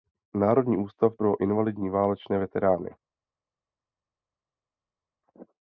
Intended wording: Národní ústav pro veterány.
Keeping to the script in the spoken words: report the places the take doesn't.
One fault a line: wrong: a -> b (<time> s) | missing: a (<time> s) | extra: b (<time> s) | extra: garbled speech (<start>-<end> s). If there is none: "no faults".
extra: invalidní válečné (1.4 s)